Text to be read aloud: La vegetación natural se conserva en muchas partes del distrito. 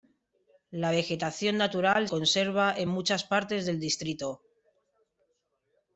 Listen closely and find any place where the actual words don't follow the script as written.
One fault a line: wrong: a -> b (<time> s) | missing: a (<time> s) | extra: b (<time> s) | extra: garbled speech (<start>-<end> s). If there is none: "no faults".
missing: se (2.1 s)